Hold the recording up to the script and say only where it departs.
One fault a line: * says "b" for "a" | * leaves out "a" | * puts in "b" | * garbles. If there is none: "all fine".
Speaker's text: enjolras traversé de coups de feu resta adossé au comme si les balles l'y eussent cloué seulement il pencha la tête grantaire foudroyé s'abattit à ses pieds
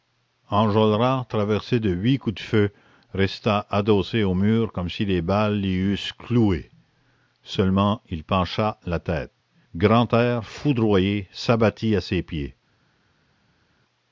* puts in "huit"
* puts in "mur"